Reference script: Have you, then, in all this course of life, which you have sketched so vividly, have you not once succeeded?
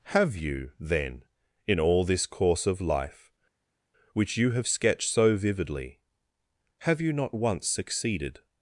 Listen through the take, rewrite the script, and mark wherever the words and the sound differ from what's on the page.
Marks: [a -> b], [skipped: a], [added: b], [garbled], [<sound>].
Have you, then, in all this course of life, which you have sketched so vividly, have you not once succeeded?